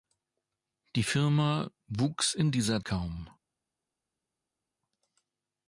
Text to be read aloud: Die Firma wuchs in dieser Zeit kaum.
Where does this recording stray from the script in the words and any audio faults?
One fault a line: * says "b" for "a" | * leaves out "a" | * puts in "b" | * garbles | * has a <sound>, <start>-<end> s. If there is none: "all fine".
* leaves out "Zeit"